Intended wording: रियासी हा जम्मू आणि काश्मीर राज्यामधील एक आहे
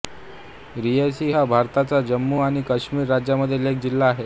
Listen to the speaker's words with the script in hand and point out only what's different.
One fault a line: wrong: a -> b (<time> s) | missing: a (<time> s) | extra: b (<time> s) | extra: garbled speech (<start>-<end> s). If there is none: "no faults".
extra: भारताच्या (1.5 s)
extra: जिल्हा (3.8 s)